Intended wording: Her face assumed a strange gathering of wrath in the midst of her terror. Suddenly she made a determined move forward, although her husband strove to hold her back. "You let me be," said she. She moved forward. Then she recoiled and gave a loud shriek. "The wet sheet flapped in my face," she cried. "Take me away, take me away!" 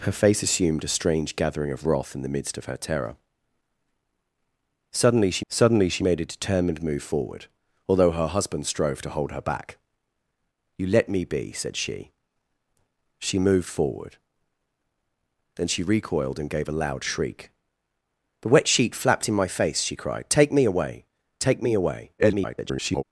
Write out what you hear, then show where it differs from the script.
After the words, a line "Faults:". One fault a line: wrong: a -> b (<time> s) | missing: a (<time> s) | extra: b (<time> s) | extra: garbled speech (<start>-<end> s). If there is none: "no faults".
Her face assumed a strange gathering of wrath in the midst of her terror. Suddenly she suddenly she made a determined move forward, although her husband strove to hold her back. "You let me be," said she. She moved forward. Then she recoiled and gave a loud shriek. "The wet sheet flapped in my face," she cried. "Take me away, take me away!" [garbled]
Faults:
extra: suddenly she (5.5 s)
extra: garbled speech (22.2-23.0 s)